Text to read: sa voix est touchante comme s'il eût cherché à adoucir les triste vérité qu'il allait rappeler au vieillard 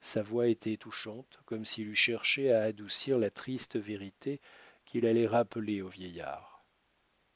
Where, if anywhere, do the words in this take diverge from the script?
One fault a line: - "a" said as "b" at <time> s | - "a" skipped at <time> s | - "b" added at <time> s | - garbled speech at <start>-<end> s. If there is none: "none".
- "est" said as "était" at 0.5 s
- "les" said as "la" at 3.2 s